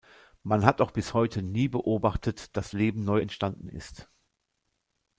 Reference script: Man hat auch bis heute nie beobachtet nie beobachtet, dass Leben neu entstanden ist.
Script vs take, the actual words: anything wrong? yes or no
yes